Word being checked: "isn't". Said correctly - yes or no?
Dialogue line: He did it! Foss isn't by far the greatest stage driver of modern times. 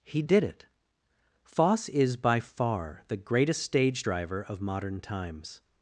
no